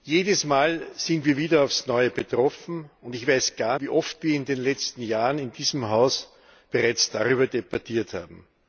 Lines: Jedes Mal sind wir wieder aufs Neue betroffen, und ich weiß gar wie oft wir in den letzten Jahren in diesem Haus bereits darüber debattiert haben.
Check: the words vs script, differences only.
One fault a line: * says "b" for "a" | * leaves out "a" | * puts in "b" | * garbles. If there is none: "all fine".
all fine